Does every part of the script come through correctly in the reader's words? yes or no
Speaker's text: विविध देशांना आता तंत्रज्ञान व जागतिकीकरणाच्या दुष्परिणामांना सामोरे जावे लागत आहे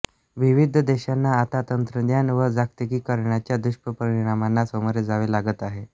yes